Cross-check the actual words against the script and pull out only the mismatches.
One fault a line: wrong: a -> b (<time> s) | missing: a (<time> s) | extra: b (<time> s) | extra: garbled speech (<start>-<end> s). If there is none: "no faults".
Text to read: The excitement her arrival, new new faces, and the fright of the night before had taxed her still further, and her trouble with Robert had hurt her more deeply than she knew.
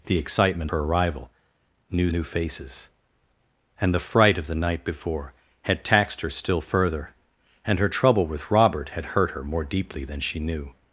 no faults